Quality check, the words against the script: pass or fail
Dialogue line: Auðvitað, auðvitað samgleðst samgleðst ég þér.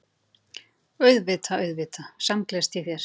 fail